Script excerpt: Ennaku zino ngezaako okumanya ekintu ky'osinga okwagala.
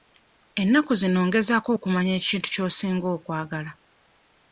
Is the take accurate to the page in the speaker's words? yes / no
yes